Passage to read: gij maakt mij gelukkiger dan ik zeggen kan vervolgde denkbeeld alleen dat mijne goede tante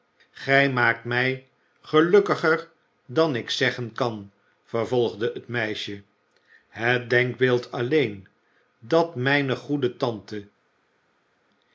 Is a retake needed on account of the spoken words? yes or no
yes